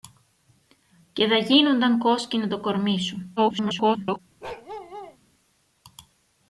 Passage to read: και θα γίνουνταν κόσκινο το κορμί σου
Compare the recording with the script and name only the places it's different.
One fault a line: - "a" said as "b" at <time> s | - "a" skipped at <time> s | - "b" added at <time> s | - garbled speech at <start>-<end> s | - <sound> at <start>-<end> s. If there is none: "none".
- garbled speech at 3.4-4.2 s
- bark at 4.4-5.2 s